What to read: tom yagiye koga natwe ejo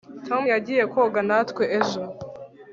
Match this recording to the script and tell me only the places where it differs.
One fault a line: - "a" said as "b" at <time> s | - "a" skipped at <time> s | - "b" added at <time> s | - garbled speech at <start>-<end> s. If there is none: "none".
none